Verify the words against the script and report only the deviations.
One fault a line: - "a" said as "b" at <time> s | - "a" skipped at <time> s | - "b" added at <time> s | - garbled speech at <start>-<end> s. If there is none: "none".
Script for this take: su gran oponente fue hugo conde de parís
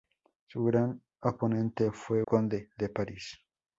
- "hugo" skipped at 2.2 s